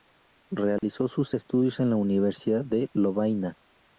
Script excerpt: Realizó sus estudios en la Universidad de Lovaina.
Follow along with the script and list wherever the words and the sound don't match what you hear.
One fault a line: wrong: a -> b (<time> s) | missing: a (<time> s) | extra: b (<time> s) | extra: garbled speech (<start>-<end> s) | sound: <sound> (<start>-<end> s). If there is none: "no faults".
sound: dropout (0.8-0.8 s)